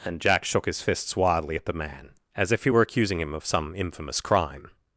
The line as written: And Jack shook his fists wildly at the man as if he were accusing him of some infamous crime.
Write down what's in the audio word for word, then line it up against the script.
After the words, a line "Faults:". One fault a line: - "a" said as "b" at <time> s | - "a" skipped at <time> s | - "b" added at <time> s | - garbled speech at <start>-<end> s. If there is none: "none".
And Jack shook his fists wildly at the man as if he were accusing him of some infamous crime.
Faults:
none